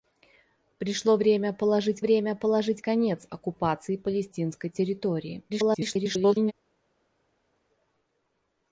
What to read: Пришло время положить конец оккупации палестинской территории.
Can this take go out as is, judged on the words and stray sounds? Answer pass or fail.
fail